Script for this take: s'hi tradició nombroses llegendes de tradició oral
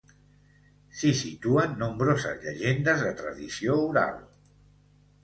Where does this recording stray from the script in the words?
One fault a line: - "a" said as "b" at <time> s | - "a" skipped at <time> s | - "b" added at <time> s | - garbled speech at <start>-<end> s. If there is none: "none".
- "tradició" said as "situen" at 1.2 s